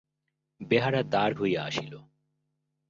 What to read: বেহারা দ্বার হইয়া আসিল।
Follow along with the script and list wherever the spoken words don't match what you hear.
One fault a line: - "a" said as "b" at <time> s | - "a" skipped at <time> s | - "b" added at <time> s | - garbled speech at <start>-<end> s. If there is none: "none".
none